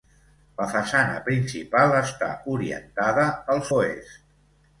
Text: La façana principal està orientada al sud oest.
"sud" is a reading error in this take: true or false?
true